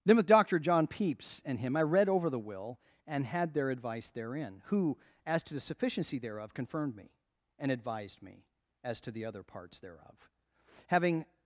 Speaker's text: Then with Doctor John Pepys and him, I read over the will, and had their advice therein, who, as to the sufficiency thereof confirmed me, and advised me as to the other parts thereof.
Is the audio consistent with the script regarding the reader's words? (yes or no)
no